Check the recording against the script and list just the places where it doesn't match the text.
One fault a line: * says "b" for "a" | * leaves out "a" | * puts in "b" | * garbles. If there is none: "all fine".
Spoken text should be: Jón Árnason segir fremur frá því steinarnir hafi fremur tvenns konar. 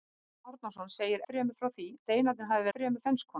all fine